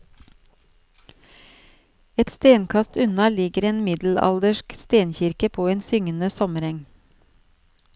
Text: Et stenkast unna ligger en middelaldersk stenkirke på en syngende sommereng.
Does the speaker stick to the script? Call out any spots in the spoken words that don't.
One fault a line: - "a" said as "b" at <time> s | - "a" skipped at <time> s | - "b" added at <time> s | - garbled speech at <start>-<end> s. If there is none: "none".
none